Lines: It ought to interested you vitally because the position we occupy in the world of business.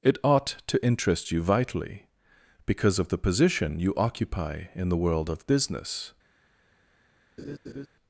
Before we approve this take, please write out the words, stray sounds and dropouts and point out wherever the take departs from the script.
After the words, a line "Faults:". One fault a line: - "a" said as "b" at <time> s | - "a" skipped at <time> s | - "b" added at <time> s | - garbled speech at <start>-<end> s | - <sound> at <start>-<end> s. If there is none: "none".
It ought to interest you vitally because of the position you occupy in the world of business.
Faults:
- "interested" said as "interest" at 0.8 s
- "of" added at 3.0 s
- "we" said as "you" at 3.8 s
- laugh at 7.4-7.9 s